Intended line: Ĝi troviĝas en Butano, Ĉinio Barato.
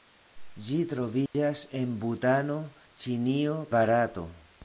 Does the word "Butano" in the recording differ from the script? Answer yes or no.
no